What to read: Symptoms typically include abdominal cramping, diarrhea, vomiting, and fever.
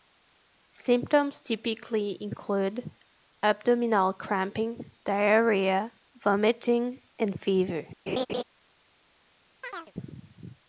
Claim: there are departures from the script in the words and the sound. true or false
true